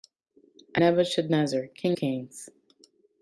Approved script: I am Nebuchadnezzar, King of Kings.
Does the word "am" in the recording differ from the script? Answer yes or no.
yes